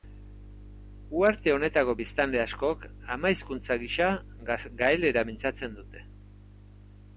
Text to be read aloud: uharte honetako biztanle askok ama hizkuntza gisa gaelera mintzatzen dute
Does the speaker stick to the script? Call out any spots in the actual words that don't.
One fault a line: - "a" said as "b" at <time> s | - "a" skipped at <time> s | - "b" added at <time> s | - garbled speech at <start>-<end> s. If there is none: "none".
none